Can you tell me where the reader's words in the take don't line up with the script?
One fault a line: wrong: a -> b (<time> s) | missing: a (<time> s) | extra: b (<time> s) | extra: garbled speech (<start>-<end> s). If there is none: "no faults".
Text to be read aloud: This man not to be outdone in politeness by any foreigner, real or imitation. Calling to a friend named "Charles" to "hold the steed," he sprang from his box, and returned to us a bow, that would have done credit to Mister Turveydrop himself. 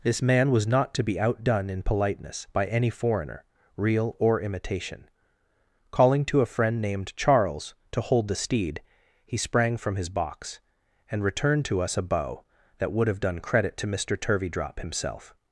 extra: was (0.5 s)